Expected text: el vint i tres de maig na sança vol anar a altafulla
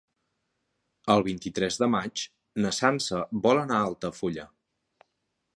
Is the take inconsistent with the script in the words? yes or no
no